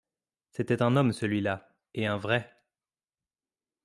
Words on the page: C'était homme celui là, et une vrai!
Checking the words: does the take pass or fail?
fail